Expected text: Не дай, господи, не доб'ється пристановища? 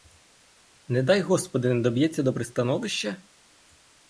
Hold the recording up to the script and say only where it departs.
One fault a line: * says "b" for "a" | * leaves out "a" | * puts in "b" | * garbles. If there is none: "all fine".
* puts in "до"